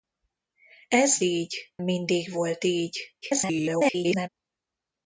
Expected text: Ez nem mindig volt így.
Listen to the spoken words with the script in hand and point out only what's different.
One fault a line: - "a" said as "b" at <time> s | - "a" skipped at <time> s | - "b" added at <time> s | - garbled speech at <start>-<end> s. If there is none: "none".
- "nem" said as "így" at 1.2 s
- garbled speech at 3.2-4.3 s